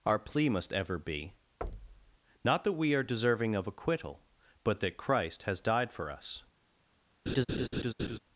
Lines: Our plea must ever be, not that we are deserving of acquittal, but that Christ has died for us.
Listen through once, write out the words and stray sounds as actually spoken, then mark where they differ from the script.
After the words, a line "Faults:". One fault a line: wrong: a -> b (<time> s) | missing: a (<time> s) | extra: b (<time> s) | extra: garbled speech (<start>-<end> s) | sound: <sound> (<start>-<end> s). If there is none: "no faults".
Our plea must ever be, not that we are deserving of acquittal, but that Christ has died for us.
Faults:
sound: thud (1.6-2.2 s)
sound: laugh (7.3-8.2 s)